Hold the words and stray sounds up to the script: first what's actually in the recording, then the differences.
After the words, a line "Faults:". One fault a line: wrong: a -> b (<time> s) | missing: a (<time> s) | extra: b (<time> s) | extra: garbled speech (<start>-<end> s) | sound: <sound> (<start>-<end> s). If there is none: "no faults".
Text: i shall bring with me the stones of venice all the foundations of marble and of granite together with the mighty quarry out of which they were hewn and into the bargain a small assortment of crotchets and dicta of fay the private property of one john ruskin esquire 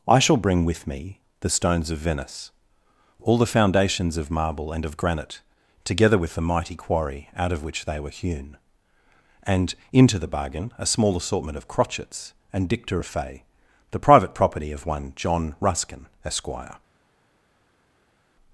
i shall bring with me the stones of venice all the foundations of marble and of granite together with the mighty quarry out of which they were hewn and into the bargain a small assortment of crotchets and dicta of fay the private property of one john ruskin esquire
Faults:
no faults